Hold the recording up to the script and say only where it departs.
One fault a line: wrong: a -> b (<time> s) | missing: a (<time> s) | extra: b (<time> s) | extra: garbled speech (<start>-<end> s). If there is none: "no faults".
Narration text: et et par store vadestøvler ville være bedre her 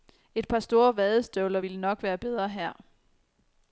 missing: et (0.5 s)
extra: nok (1.8 s)